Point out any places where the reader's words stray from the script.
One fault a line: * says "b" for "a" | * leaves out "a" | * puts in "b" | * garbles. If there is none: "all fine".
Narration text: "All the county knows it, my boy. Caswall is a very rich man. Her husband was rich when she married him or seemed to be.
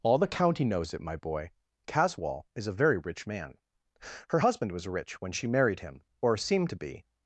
all fine